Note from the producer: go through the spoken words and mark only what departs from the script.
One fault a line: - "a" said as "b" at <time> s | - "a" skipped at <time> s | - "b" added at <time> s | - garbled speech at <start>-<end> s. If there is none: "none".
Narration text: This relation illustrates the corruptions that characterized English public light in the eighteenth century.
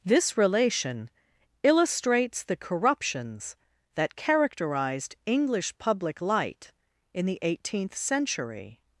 none